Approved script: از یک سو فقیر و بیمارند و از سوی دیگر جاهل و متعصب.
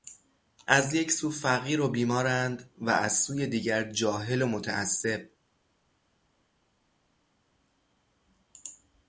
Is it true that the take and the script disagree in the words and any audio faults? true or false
false